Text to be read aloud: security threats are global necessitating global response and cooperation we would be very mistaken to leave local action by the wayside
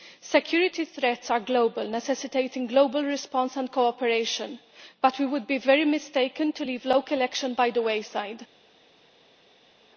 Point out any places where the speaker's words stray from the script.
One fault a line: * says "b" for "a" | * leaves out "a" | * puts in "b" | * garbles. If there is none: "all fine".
* puts in "but"